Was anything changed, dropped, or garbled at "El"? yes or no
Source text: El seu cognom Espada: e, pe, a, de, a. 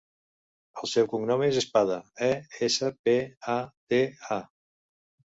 no